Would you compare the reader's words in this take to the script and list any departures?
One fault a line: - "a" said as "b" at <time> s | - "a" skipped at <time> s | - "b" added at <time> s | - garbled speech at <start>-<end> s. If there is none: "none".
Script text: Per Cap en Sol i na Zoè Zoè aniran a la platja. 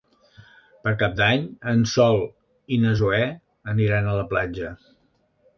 - "d'Any" added at 1.2 s
- "Zoè" skipped at 3.2 s